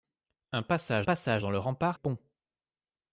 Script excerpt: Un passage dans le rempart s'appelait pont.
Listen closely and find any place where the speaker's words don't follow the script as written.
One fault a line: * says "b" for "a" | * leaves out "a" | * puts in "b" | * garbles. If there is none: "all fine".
* puts in "passage"
* leaves out "s'appelait"